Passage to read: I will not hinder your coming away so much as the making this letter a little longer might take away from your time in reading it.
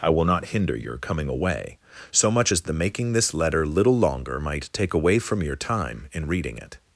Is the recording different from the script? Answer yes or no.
yes